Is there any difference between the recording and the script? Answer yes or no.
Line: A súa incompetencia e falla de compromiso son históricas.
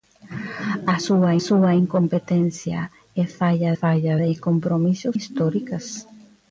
yes